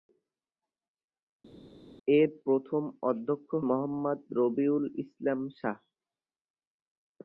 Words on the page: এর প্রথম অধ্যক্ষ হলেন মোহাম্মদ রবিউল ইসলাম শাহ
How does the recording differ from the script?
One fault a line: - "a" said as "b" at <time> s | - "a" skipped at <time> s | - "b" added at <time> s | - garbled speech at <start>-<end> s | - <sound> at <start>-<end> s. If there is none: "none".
- "হলেন" skipped at 3.5 s